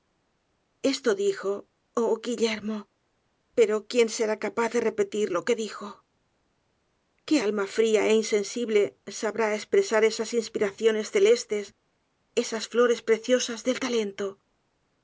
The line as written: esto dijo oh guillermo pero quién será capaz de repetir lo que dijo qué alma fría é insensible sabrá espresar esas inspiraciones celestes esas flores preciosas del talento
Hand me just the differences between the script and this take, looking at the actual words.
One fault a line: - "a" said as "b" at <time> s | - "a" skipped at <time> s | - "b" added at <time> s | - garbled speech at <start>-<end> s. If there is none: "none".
none